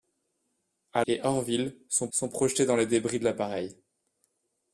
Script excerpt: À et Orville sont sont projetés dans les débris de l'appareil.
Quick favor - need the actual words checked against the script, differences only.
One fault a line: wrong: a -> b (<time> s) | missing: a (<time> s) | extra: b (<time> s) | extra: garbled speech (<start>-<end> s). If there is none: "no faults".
no faults